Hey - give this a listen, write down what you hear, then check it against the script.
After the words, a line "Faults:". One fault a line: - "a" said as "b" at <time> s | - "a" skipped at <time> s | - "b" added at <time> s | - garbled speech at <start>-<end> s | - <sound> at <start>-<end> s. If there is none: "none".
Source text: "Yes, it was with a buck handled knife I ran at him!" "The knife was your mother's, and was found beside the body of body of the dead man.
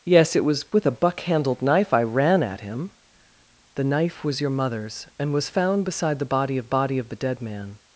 "Yes, it was with a buck handled knife I ran at him!" "The knife was your mother's, and was found beside the body of body of the dead man.
Faults:
none